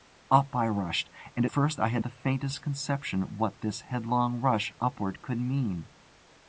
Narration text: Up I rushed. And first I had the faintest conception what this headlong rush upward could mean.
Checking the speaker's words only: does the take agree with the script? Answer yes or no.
yes